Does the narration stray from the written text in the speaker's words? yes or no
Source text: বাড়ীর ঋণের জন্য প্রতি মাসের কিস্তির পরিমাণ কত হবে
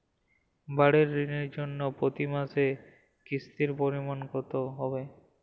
no